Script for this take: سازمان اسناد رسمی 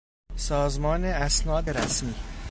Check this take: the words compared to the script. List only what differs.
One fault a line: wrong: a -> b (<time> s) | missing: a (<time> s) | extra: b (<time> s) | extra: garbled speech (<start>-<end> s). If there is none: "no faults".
no faults